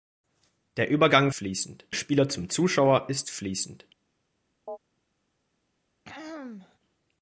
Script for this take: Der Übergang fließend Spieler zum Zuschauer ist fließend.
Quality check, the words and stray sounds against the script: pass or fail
fail